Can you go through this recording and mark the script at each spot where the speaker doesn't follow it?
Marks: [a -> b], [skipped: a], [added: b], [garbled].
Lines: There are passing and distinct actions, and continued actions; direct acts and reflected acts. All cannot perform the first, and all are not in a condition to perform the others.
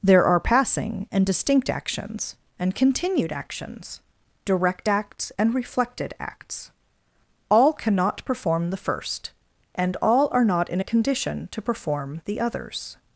There are passing and distinct actions, and continued actions; direct acts and reflected acts. All cannot perform the first, and all are not in a condition to perform the others.